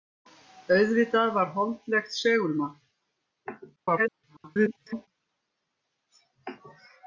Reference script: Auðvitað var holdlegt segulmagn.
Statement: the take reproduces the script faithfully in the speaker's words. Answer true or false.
false